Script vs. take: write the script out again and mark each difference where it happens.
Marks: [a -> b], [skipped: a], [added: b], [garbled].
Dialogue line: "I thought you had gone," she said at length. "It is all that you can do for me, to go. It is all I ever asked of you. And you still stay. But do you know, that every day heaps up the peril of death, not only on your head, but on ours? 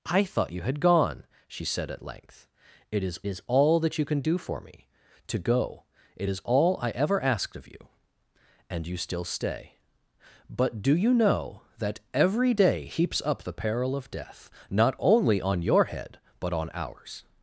"I thought you had gone," she said at length. "It is [added: is] all that you can do for me, to go. It is all I ever asked of you. And you still stay. But do you know, that every day heaps up the peril of death, not only on your head, but on ours?